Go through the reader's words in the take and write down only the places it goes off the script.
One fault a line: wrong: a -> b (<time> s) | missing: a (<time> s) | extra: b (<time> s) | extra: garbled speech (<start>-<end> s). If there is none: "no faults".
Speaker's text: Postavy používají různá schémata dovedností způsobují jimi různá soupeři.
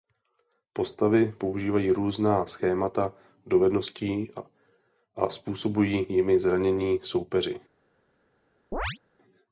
extra: a (5.1 s)
wrong: různá -> zranění (6.4 s)